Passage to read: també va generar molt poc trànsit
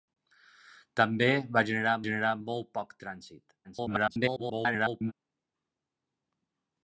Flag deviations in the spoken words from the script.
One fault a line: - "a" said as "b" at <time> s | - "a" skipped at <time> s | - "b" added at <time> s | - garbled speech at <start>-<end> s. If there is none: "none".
- "generar" added at 2.1 s
- garbled speech at 3.6-5.1 s